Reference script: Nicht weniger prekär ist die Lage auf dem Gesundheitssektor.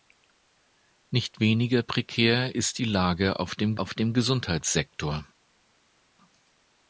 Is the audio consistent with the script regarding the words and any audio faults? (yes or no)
no